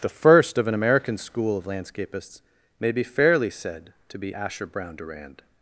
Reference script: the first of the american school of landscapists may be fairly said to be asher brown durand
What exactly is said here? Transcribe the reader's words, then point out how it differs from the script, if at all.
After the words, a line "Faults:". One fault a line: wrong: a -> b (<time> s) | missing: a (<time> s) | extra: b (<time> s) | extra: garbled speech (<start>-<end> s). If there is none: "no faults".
the first of an american school of landscapists may be fairly said to be asher brown durand
Faults:
wrong: the -> an (0.7 s)